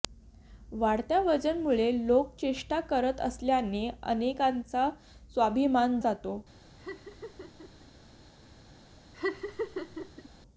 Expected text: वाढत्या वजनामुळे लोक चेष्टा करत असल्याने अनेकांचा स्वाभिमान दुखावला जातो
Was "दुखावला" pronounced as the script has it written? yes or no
no